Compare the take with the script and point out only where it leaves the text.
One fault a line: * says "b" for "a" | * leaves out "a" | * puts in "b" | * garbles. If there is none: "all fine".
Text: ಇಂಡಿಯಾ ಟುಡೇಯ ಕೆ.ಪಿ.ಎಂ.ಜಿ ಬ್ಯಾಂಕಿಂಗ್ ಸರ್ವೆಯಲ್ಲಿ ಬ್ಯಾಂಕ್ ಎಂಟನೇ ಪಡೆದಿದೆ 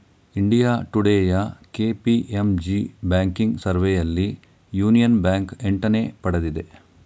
* puts in "ಯೂನಿಯನ್"